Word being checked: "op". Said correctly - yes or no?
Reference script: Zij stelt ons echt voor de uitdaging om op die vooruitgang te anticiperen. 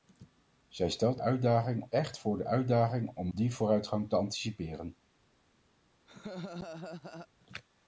no